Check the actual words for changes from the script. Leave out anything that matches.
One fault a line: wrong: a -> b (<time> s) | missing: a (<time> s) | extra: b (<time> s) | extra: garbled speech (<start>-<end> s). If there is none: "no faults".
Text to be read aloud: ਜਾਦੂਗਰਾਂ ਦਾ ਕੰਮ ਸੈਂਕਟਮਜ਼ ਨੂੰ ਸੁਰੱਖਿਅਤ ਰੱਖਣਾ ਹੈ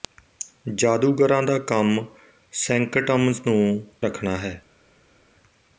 missing: ਸੁਰੱਖਿਅਤ (3.9 s)